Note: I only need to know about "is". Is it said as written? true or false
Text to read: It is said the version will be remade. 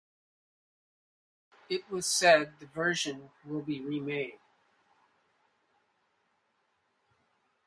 false